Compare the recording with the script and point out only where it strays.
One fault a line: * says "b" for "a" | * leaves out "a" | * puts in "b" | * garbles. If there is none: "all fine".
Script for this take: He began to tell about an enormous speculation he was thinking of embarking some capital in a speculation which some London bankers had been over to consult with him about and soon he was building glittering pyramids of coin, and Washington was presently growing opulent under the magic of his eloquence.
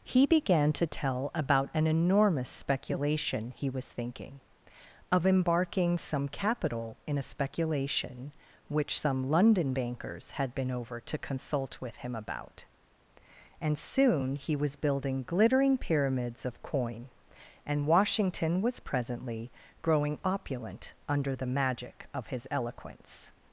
all fine